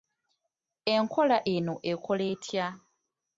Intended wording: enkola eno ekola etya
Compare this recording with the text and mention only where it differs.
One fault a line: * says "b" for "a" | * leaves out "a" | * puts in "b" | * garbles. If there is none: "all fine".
all fine